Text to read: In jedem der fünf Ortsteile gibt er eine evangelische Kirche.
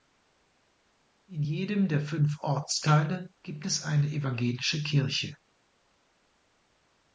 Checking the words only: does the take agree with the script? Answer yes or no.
no